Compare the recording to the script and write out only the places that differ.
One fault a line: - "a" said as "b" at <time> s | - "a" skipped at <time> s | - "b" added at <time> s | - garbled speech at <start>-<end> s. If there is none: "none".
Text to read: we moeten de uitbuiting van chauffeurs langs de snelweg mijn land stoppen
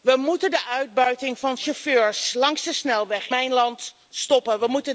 none